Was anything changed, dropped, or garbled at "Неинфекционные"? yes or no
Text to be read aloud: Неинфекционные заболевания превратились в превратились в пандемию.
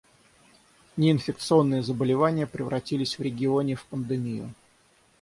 no